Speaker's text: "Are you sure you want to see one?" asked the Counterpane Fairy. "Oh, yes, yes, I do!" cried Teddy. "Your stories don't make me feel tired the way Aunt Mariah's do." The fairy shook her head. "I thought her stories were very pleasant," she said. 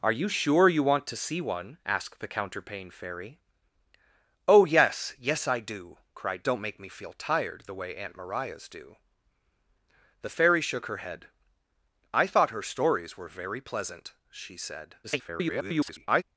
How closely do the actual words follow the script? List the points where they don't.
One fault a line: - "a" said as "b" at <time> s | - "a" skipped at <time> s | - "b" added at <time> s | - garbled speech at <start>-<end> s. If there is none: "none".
- "Teddy Your stories" skipped at 6.5 s
- garbled speech at 15.0-16.2 s